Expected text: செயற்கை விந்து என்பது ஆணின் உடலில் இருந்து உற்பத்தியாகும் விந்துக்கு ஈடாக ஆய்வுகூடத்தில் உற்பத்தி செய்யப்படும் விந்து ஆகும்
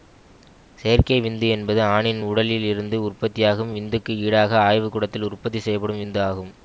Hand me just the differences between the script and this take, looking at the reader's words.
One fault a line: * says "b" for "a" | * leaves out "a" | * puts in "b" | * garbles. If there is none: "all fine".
all fine